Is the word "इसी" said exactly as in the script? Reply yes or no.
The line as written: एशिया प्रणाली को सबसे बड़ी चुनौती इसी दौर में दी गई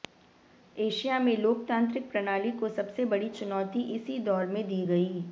yes